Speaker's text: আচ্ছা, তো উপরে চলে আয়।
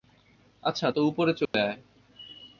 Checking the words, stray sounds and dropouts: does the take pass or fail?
fail